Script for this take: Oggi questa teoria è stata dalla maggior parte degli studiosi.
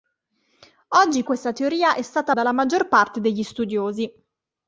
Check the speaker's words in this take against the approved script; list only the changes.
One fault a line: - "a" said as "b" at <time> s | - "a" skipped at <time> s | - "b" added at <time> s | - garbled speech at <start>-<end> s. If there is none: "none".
none